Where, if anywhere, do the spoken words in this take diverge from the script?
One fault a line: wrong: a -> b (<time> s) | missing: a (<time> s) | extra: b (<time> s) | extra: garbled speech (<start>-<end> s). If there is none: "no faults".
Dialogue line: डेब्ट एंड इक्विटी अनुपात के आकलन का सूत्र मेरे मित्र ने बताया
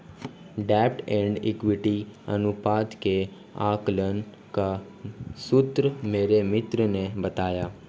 no faults